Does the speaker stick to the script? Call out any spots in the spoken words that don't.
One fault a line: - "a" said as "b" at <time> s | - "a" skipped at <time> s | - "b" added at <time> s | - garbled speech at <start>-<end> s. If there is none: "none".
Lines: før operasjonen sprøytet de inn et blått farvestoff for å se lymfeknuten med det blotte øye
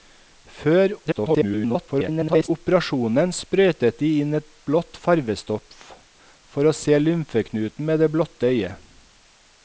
- garbled speech at 1.0-2.5 s